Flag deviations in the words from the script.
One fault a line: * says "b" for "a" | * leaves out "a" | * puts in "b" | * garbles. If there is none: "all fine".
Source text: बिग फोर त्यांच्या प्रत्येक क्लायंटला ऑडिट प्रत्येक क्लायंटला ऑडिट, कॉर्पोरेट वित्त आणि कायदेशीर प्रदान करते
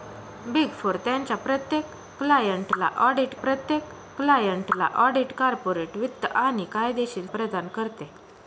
all fine